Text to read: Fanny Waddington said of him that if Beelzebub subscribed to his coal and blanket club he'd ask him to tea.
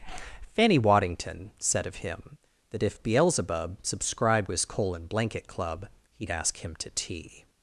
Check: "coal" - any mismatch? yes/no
no